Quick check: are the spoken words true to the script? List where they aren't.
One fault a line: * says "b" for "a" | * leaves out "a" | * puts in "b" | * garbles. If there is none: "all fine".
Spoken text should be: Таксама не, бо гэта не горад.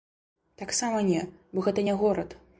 all fine